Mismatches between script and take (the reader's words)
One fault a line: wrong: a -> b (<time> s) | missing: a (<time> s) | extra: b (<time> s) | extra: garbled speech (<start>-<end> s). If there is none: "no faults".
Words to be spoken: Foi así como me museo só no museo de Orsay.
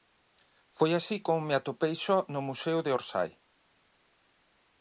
wrong: museo -> atopei (1.6 s)